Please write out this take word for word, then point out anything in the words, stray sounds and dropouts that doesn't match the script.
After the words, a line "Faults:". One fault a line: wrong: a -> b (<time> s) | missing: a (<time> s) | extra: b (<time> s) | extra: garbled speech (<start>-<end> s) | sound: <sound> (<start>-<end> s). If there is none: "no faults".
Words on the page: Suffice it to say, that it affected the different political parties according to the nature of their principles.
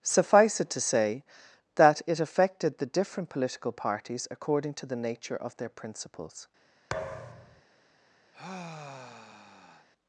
Suffice it to say, that it affected the different political parties according to the nature of their principles.
Faults:
sound: thud (6.9-7.6 s)
sound: sigh (8.3-9.9 s)